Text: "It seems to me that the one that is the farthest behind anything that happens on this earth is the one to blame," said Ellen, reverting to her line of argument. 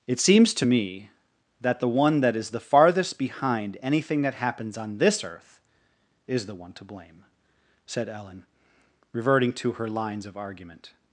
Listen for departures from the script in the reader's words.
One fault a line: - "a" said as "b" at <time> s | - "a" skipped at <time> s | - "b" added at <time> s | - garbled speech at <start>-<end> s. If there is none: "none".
- "line" said as "lines" at 9.9 s